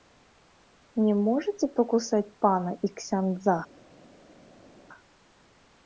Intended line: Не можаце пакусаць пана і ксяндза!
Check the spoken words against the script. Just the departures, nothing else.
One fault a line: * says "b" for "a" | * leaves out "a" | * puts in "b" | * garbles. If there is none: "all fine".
all fine